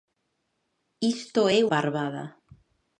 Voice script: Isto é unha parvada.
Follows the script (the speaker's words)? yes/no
no